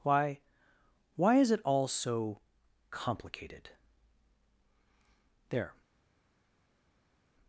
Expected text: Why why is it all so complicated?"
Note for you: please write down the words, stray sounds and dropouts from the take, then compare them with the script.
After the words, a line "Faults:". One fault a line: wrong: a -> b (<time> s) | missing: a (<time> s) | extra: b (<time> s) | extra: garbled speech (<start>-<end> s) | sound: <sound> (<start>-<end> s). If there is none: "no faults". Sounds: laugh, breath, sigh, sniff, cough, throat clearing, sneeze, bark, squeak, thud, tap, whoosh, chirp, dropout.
Why why is it all so complicated?" "There
Faults:
extra: There (5.5 s)